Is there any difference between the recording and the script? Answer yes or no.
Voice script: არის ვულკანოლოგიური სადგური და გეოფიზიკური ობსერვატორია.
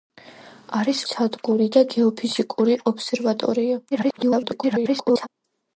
yes